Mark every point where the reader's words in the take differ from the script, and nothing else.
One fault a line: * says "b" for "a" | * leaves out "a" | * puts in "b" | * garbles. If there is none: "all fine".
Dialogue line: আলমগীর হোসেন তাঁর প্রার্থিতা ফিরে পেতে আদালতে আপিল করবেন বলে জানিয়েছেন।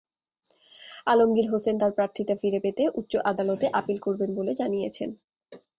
* puts in "উচ্চ"